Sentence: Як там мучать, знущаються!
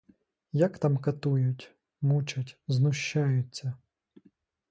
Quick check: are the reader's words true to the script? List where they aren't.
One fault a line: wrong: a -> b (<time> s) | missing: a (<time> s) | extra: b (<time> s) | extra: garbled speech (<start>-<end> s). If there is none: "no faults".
extra: катують (1.0 s)